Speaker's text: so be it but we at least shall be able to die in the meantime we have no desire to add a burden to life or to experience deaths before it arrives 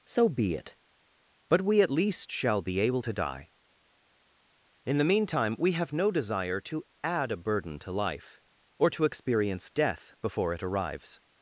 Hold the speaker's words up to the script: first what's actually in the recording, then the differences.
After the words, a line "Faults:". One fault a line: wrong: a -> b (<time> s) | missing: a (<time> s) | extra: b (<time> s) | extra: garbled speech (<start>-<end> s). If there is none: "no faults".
so be it but we at least shall be able to die in the meantime we have no desire to add a burden to life or to experience death before it arrives
Faults:
wrong: deaths -> death (9.7 s)